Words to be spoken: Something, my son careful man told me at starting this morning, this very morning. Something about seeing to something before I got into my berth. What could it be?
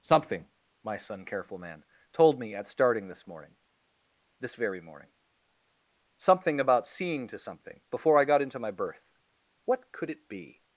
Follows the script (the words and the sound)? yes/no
yes